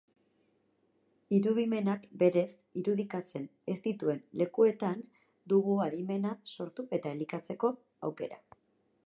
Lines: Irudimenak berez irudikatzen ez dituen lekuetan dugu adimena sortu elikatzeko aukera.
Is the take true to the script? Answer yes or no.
no